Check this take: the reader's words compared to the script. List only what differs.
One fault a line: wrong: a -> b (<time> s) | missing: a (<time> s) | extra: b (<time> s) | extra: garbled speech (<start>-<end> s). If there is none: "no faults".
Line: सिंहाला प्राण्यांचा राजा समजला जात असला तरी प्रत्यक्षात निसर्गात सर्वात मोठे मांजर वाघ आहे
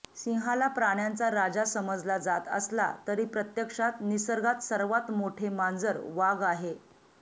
no faults